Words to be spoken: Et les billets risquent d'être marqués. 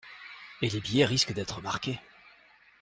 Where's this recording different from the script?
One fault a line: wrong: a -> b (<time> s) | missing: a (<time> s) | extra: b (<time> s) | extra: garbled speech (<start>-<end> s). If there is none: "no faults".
no faults